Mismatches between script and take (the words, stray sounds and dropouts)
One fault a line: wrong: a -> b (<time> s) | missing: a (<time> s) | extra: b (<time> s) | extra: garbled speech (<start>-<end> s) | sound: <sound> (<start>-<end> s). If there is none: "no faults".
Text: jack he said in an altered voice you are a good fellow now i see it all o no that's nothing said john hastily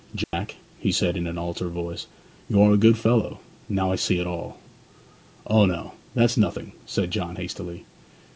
sound: dropout (0.2-0.3 s)